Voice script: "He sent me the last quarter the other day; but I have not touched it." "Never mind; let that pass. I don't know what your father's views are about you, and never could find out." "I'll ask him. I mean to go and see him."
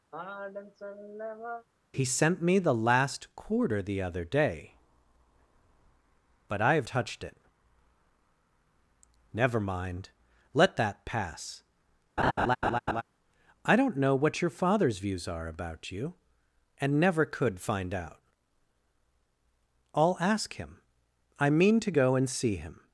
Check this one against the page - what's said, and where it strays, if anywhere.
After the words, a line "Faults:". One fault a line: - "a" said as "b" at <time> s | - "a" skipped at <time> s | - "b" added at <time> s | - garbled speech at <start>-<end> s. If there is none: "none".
"He sent me the last quarter the other day; but I have touched it." "Never mind; let that pass. I don't know what your father's views are about you, and never could find out." "I'll ask him. I mean to go and see him."
Faults:
- "not" skipped at 6.9 s